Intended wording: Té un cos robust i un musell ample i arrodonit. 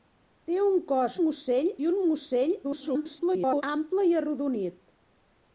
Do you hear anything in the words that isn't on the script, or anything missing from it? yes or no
yes